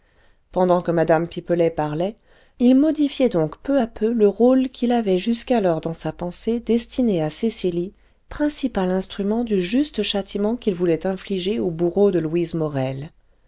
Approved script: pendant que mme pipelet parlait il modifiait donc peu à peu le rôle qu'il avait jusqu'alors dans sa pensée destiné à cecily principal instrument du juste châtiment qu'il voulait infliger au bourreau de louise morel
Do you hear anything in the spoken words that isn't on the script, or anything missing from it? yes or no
no